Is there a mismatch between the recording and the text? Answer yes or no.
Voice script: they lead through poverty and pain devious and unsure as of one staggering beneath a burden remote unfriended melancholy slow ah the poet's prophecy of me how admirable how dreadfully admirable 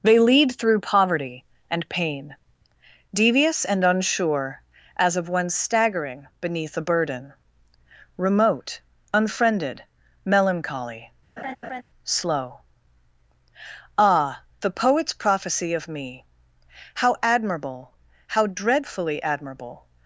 no